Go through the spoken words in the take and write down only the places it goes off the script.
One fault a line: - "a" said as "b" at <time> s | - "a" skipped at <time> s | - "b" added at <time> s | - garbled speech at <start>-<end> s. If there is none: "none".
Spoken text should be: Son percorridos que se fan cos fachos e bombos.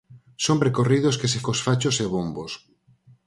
- "fan" skipped at 1.4 s